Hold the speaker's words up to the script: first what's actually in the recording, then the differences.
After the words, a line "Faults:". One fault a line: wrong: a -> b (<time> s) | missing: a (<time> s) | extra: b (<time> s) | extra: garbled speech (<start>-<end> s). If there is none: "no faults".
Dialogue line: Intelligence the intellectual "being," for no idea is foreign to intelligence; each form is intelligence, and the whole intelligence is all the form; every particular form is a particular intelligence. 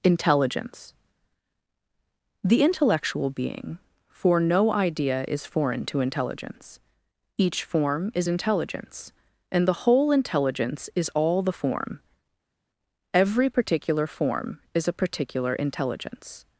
Intelligence the intellectual "being," for no idea is foreign to intelligence; each form is intelligence, and the whole intelligence is all the form; every particular form is a particular intelligence.
Faults:
no faults